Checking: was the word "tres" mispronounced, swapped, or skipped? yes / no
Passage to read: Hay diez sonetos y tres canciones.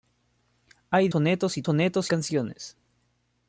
yes